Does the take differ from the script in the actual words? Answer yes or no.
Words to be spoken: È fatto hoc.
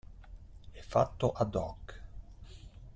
yes